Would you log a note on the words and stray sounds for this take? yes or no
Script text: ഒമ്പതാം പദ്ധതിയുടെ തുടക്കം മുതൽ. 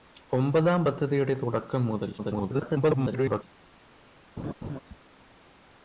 yes